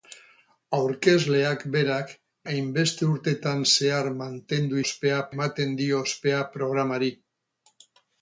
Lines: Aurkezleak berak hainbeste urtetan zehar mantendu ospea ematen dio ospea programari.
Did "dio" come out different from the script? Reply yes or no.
no